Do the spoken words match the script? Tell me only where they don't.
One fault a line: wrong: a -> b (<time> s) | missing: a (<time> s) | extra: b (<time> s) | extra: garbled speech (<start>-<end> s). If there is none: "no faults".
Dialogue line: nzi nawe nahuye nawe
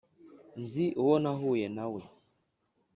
wrong: nawe -> uwo (1.0 s)